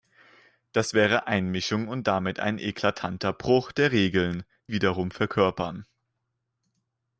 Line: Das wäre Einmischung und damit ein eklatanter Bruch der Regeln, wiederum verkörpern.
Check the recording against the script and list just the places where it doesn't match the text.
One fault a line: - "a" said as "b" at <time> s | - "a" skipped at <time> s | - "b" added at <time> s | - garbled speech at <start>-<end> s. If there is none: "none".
none